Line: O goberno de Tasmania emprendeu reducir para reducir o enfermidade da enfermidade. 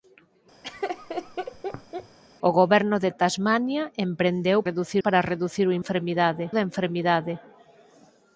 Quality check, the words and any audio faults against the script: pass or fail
fail